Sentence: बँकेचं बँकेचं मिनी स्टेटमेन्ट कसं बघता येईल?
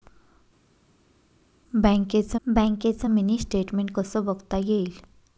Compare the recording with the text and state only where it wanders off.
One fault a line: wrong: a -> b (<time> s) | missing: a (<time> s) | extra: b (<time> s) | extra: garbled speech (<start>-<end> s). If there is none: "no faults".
no faults